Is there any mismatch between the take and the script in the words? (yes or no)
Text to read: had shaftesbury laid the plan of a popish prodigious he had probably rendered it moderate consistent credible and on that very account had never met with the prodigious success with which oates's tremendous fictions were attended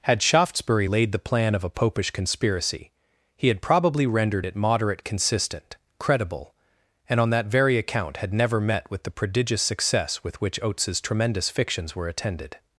yes